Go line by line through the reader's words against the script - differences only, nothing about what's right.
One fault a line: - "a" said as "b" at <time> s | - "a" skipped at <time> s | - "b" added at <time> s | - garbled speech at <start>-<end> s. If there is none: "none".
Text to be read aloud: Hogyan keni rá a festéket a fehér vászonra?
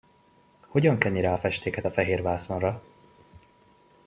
none